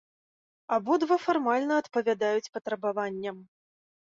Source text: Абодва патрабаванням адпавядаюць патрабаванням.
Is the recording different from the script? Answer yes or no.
yes